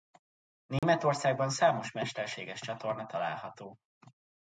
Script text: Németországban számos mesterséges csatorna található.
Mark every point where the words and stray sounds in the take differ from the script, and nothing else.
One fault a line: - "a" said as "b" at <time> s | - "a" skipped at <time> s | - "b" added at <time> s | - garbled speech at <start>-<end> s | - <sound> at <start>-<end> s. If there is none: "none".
- dropout at 0.8-0.8 s